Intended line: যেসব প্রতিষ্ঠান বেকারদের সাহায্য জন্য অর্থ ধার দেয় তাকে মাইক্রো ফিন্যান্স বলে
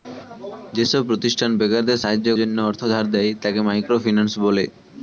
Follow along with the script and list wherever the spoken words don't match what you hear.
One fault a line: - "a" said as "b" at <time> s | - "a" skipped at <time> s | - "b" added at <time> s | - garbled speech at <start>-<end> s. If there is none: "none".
none